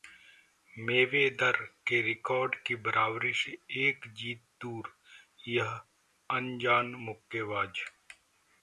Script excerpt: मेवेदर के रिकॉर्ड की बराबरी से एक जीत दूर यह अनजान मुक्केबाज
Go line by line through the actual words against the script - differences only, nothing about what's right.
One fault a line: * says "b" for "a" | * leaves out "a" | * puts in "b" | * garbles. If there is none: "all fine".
all fine